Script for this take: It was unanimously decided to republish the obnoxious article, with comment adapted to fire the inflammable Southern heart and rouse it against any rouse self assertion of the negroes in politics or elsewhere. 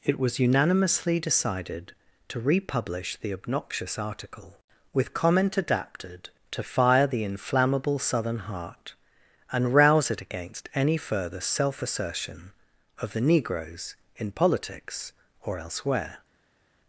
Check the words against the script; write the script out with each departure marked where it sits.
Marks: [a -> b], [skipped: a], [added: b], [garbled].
It was unanimously decided to republish the obnoxious article, with comment adapted to fire the inflammable Southern heart and rouse it against any [rouse -> further] self assertion of the negroes in politics or elsewhere.